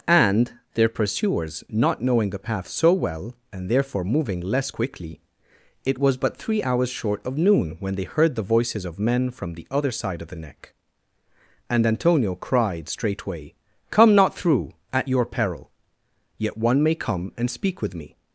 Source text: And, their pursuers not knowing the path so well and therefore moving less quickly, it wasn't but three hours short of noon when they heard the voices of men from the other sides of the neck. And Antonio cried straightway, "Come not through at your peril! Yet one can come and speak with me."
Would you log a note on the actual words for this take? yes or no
yes